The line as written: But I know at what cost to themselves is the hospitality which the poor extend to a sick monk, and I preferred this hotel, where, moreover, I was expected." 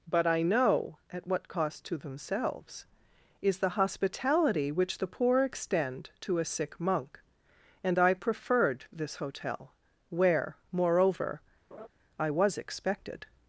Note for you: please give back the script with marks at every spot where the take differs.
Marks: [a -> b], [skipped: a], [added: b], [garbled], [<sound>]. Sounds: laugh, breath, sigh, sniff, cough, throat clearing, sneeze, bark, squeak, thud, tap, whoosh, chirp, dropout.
But I know at what cost to themselves is the hospitality which the poor extend to a sick monk, and I preferred this hotel, where, moreover, [laugh] I was expected."